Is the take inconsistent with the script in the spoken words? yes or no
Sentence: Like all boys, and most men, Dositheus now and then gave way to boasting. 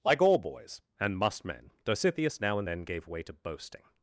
yes